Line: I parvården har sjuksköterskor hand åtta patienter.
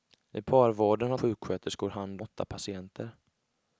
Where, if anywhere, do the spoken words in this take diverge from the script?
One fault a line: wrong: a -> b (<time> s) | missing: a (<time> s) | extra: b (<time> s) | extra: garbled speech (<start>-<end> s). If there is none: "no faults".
no faults